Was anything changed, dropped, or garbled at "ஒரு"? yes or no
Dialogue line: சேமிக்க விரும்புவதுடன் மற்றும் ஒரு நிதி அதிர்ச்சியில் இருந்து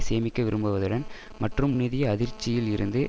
yes